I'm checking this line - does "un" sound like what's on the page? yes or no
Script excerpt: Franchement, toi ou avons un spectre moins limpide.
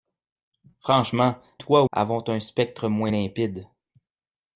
yes